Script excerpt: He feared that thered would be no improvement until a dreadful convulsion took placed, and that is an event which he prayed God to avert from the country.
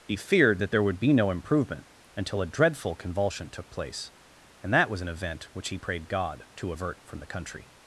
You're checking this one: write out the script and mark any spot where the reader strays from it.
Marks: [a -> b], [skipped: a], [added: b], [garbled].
He feared that [thered -> there] would be no improvement until a dreadful convulsion took [placed, -> place] and that [is -> was] an event which he prayed God to avert from the country.